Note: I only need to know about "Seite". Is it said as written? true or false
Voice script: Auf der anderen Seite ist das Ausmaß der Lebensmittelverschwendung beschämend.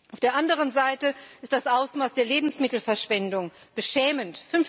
true